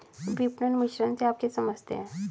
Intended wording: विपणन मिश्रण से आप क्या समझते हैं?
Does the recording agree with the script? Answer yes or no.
yes